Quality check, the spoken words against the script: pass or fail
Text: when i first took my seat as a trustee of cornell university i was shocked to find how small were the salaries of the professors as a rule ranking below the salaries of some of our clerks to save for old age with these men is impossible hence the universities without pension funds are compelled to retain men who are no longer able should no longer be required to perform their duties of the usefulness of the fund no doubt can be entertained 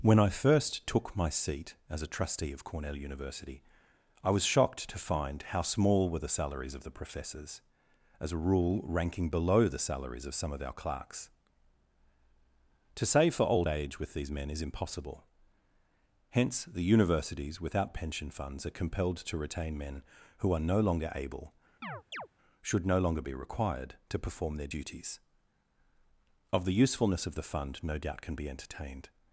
pass